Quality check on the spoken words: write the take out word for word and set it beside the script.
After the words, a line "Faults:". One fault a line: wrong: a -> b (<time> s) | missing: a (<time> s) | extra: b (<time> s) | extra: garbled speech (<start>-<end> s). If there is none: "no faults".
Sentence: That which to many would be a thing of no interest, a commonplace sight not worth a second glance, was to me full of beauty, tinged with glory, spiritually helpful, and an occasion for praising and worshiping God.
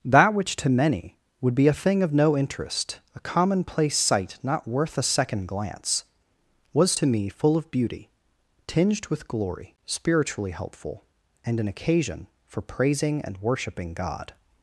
That which to many would be a thing of no interest, a commonplace sight not worth a second glance, was to me full of beauty, tinged with glory, spiritually helpful, and an occasion for praising and worshiping God.
Faults:
no faults